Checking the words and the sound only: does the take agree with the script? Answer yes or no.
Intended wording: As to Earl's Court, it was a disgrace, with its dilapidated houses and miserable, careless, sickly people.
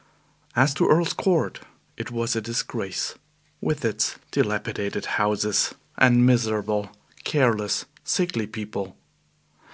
yes